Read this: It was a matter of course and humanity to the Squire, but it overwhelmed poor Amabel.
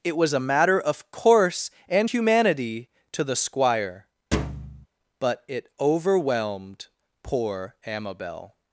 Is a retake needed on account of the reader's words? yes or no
no